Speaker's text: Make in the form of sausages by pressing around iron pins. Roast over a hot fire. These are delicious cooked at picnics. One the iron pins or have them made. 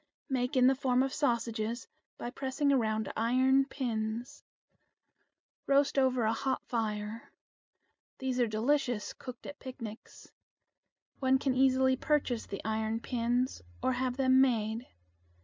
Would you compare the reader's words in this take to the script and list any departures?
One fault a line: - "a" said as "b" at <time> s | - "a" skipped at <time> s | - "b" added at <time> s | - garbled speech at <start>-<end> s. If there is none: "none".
- "can easily purchase" added at 11.4 s